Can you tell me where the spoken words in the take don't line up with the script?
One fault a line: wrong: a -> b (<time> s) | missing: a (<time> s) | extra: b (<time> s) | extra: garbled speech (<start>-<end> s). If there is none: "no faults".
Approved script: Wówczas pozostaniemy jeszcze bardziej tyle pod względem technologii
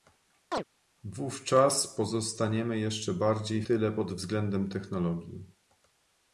no faults